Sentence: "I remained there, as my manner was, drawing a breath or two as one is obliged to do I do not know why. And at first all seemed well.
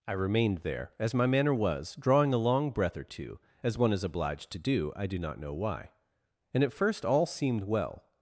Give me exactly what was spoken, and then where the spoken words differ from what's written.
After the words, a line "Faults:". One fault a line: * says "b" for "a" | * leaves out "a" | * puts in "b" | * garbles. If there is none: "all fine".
"I remained there, as my manner was, drawing a long breath or two as one is obliged to do I do not know why. And at first all seemed well.
Faults:
* puts in "long"